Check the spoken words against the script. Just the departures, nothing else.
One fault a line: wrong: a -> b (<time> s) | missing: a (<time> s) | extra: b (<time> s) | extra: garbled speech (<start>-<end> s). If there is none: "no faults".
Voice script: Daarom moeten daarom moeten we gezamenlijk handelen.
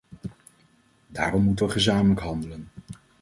missing: daarom moeten (1.6 s)